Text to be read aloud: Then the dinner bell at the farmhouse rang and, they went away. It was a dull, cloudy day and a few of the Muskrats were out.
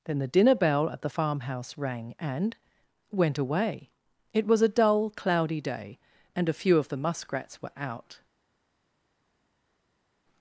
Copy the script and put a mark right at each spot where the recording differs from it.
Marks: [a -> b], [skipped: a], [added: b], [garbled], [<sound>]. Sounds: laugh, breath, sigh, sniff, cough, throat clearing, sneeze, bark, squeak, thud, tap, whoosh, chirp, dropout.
Then the dinner bell at the farmhouse rang and, [skipped: they] went away. It was a dull, cloudy day and a few of the Muskrats were out.